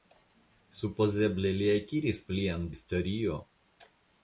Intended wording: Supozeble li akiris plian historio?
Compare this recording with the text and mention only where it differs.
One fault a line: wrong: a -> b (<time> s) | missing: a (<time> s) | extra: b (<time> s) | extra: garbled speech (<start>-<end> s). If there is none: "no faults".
no faults